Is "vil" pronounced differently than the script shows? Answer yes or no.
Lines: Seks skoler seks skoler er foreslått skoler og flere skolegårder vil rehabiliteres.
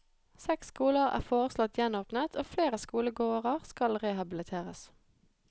yes